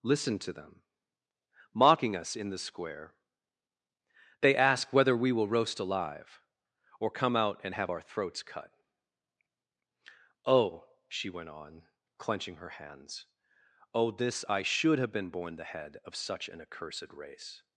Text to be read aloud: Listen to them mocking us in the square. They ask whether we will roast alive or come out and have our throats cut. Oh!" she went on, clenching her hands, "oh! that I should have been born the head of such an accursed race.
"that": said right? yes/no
no